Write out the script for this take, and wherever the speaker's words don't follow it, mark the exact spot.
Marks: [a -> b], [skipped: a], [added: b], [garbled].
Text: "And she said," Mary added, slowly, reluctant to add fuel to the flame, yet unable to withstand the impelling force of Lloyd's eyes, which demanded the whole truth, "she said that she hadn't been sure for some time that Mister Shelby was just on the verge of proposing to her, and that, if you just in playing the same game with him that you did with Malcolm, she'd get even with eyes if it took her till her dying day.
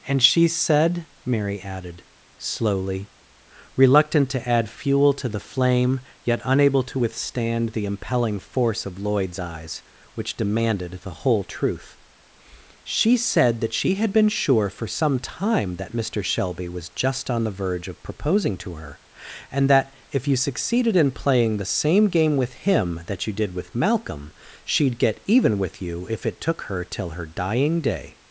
"And she said," Mary added, slowly, reluctant to add fuel to the flame, yet unable to withstand the impelling force of Lloyd's eyes, which demanded the whole truth, "she said that she [hadn't -> had] been sure for some time that Mister Shelby was just on the verge of proposing to her, and that, if you [just -> succeeded] in playing the same game with him that you did with Malcolm, she'd get even with [eyes -> you] if it took her till her dying day.